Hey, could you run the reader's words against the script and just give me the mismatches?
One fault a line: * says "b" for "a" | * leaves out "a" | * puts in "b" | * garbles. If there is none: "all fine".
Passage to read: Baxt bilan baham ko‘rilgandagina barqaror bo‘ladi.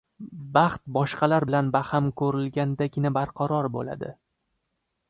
* puts in "boshqalar"